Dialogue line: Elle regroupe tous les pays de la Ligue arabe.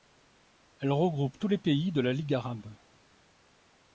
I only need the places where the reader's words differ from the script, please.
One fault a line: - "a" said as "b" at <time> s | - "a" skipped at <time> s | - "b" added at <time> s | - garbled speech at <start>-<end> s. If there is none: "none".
none